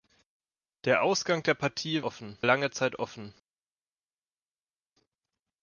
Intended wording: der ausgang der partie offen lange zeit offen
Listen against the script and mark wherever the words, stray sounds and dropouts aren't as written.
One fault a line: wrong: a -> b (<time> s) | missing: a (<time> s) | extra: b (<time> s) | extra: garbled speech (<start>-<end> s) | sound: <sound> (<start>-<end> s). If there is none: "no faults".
no faults